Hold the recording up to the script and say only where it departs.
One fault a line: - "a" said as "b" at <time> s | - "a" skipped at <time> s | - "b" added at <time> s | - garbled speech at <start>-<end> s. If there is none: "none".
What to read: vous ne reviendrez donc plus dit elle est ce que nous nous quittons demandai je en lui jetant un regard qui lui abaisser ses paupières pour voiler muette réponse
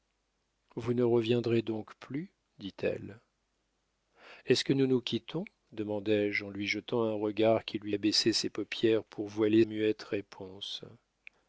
none